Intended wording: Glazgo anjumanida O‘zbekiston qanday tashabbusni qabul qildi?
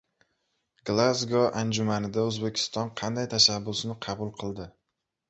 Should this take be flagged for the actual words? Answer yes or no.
no